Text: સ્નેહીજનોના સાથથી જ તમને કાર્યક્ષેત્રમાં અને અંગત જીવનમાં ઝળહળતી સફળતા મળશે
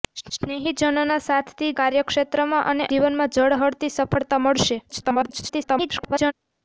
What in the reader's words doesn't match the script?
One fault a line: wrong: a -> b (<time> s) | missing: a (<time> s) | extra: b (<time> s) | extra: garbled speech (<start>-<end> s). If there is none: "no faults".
missing: જ તમને (1.7 s)
missing: અંગત (2.9 s)
extra: garbled speech (4.9-6.3 s)